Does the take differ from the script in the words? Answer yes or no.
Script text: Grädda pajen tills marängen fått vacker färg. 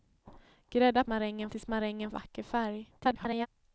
yes